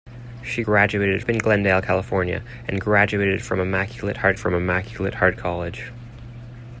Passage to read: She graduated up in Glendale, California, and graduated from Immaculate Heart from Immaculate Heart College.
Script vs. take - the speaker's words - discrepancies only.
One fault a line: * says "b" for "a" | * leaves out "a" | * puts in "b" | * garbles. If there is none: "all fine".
all fine